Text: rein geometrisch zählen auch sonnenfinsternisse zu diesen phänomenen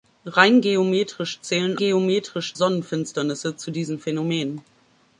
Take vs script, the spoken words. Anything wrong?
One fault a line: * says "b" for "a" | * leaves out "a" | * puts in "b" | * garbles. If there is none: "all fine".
* says "geometrisch" for "auch"